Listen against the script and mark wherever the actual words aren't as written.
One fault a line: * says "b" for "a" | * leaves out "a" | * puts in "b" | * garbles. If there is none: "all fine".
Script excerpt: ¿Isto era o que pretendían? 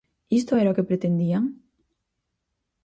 all fine